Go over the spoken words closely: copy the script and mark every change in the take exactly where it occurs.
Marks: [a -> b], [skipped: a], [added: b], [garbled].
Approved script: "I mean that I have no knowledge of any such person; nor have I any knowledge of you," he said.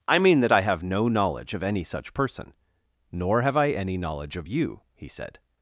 "I mean that I have no knowledge of any such person; nor have I any knowledge of you," he said.